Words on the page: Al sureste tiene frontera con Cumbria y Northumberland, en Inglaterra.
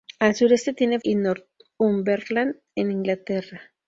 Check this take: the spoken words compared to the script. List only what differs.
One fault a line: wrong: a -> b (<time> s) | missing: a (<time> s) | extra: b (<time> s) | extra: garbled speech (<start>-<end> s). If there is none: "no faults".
missing: frontera con Cumbria (1.0 s)